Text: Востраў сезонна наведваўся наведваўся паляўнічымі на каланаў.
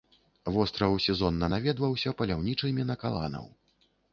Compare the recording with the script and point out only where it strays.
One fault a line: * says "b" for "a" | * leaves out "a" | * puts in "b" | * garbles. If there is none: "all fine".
* leaves out "наведваўся"